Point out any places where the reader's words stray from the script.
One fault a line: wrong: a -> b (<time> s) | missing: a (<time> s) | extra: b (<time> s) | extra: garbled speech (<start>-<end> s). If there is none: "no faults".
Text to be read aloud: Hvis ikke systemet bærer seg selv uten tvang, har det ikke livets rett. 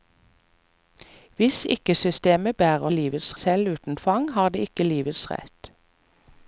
wrong: seg -> livets (2.9 s)